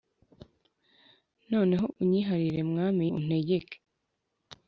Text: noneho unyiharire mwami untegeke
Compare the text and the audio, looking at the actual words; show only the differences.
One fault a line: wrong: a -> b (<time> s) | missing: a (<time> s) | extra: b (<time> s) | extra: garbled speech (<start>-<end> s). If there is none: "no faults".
no faults